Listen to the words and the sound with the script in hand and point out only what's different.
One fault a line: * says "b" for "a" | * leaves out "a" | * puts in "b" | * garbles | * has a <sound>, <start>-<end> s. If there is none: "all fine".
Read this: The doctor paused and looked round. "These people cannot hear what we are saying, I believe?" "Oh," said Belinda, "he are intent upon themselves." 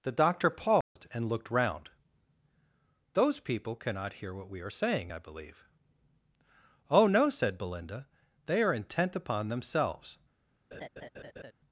* has a dropout, 0.8-1.0 s
* says "Those" for "These"
* puts in "no"
* says "they" for "he"
* has a laugh, 10.7-11.5 s